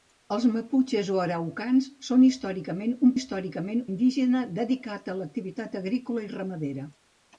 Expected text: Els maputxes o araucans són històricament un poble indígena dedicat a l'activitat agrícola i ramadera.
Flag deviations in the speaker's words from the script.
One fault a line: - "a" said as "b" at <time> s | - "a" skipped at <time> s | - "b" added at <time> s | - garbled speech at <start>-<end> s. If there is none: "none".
- "poble" said as "històricament" at 3.1 s